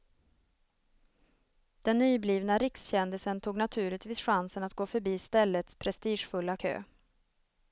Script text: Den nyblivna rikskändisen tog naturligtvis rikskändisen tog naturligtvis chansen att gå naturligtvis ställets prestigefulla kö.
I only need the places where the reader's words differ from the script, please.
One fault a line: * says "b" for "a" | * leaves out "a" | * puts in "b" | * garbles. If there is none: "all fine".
* leaves out "rikskändisen tog naturligtvis"
* says "förbi" for "naturligtvis"